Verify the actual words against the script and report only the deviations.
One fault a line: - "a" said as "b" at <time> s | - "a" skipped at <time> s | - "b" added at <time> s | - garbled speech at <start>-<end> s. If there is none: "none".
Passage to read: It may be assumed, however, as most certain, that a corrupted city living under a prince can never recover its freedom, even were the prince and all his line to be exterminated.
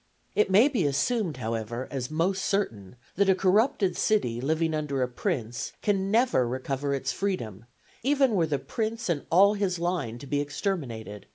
none